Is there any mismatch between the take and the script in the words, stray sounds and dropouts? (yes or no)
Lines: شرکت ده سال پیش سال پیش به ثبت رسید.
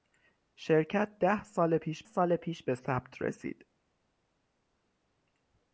no